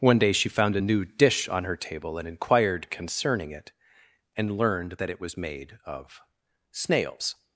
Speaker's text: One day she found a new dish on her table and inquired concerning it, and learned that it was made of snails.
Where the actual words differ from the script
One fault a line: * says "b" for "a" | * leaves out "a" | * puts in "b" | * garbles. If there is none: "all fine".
all fine